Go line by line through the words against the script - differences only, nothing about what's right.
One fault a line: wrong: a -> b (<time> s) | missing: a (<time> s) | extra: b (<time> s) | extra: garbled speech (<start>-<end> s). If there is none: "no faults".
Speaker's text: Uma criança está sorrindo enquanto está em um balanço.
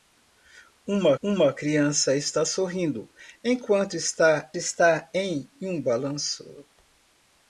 extra: uma (1.2 s)
extra: está (4.6 s)